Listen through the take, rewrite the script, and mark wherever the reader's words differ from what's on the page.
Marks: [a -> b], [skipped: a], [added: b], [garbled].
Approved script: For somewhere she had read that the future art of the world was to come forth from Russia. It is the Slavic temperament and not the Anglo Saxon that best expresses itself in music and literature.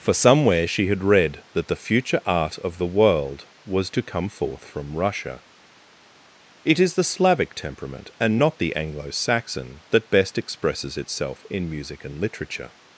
For somewhere she had read that the future art of the world was to come forth from Russia. It is the Slavic temperament and not the Anglo Saxon that best expresses itself in music and literature.